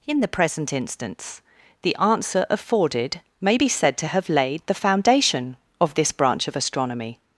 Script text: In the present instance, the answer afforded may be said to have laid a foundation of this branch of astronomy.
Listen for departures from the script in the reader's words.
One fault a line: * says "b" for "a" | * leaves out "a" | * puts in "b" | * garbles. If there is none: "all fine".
* says "the" for "a"